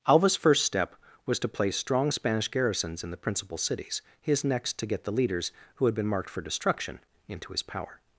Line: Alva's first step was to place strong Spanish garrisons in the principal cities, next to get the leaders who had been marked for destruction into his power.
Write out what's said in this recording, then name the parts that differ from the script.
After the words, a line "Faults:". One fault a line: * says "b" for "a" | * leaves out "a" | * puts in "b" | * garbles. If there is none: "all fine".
Alva's first step was to place strong Spanish garrisons in the principal cities, his next to get the leaders who had been marked for destruction into his power.
Faults:
* puts in "his"